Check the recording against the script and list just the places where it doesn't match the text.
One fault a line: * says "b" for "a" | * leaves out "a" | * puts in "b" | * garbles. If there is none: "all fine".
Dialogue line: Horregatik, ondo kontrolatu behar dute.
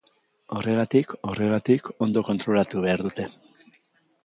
* puts in "horregatik"